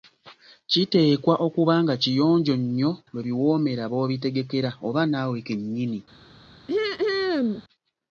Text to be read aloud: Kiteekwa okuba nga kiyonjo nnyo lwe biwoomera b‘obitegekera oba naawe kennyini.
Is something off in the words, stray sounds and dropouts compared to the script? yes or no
yes